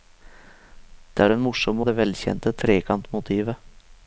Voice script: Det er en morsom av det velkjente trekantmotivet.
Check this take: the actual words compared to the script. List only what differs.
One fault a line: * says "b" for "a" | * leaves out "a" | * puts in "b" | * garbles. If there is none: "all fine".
all fine